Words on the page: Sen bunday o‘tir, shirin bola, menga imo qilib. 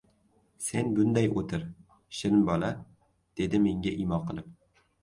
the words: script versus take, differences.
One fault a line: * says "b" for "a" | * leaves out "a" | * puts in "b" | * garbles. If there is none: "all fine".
* puts in "dedi"